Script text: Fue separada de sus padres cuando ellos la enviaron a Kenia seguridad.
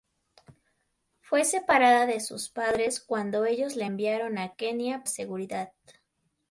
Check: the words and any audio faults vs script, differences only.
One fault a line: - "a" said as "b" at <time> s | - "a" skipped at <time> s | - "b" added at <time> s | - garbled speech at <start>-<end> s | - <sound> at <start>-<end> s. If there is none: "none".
none